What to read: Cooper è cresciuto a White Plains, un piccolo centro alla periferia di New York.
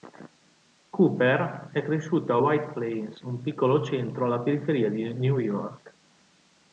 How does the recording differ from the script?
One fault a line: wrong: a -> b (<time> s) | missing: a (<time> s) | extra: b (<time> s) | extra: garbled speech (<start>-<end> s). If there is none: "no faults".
no faults